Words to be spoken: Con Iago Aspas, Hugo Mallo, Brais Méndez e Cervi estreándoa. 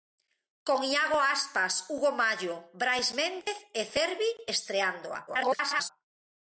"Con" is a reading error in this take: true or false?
false